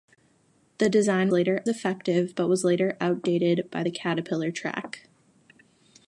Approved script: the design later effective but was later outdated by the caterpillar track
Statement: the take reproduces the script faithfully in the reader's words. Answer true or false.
true